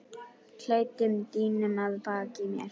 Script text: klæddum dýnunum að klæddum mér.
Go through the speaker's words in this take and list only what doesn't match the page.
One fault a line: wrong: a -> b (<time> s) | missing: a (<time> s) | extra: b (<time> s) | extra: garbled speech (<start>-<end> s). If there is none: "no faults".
wrong: klæddum -> baki (2.1 s)